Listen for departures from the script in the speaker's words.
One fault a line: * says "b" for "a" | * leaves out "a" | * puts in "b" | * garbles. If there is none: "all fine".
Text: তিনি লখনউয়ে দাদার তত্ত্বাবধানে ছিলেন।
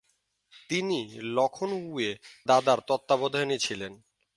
all fine